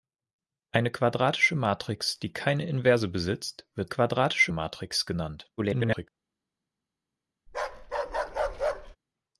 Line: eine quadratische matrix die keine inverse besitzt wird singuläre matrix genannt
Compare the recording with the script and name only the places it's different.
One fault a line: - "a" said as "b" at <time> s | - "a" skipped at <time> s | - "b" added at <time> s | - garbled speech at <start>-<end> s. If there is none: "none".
- "singuläre" said as "quadratische" at 3.9 s
- garbled speech at 5.6-6.1 s